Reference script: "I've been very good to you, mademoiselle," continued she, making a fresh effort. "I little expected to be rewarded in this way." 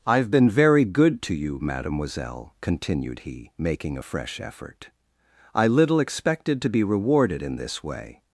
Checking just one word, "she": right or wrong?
wrong